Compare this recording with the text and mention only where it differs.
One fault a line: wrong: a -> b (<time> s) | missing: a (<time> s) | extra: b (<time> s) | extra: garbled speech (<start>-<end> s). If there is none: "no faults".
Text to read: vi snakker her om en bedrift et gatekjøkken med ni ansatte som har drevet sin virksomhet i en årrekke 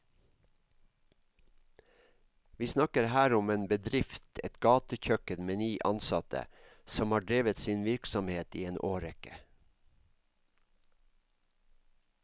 no faults